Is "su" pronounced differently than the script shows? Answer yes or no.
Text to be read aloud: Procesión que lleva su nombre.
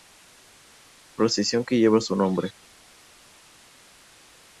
no